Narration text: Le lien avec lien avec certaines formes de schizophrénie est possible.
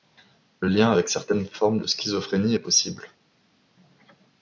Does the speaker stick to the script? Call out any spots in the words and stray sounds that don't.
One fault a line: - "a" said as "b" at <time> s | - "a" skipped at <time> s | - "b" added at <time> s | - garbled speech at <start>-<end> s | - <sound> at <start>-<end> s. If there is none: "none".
- "lien avec" skipped at 1.1 s